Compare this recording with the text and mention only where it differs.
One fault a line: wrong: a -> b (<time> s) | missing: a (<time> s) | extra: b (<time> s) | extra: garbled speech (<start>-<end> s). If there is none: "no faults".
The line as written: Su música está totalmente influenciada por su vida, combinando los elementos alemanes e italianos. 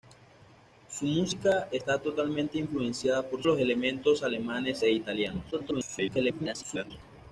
missing: su vida combinando (3.4 s)
extra: garbled speech (5.5-6.9 s)